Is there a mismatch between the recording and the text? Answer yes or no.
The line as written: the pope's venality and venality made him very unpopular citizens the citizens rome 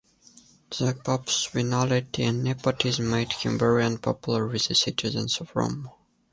yes